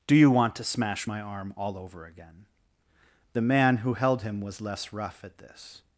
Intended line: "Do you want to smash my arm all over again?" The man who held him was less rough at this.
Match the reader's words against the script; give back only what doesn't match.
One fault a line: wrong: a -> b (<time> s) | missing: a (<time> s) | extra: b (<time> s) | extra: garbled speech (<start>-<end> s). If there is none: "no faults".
no faults